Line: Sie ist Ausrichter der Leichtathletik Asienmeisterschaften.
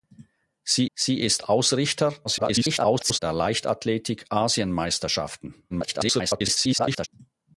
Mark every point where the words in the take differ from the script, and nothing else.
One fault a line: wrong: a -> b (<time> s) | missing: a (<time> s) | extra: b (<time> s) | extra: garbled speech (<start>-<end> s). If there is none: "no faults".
extra: sie (0.9 s)
extra: garbled speech (2.2-3.2 s)
extra: garbled speech (5.7-7.1 s)